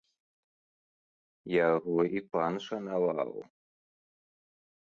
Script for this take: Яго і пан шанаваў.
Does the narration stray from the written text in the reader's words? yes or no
no